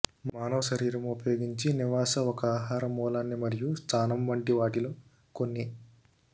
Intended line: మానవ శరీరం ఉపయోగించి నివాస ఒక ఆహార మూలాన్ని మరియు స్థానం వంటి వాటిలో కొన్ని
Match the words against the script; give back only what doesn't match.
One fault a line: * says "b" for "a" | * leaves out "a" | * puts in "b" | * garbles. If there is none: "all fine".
all fine